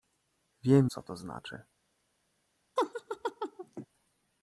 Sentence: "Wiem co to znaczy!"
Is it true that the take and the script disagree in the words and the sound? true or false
true